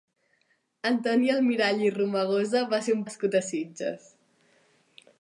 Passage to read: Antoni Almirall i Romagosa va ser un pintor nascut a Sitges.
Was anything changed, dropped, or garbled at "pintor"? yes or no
yes